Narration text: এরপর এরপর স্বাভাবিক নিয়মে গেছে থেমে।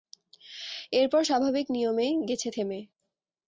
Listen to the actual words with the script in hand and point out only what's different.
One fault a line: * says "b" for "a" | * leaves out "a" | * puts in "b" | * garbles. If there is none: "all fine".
* leaves out "এরপর"